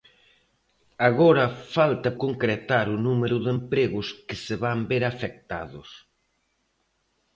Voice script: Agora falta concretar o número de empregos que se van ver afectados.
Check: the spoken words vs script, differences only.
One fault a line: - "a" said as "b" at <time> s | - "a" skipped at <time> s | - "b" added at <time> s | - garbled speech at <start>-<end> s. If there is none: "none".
none